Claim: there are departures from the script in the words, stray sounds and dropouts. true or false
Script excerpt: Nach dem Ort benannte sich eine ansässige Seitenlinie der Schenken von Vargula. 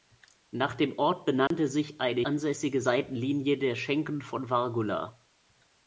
true